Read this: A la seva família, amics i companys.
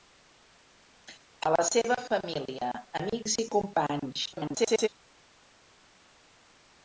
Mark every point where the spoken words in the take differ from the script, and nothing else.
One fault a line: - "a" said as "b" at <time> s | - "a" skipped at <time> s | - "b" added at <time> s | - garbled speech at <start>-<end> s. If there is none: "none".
- garbled speech at 4.3-4.9 s